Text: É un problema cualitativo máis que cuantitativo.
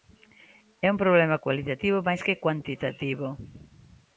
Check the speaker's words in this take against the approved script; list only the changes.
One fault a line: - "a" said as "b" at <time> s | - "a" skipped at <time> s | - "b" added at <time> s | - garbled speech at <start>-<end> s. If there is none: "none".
none